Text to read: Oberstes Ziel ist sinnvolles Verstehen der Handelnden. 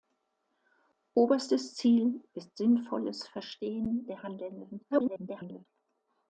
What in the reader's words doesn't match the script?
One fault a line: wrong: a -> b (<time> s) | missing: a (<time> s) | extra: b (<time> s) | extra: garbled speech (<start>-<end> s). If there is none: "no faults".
extra: garbled speech (4.9-5.7 s)